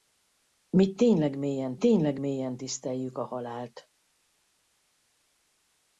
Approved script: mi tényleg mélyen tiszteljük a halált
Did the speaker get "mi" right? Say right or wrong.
right